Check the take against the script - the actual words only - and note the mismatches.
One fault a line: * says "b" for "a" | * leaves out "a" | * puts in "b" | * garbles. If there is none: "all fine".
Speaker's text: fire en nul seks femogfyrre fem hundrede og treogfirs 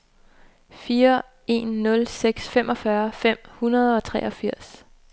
all fine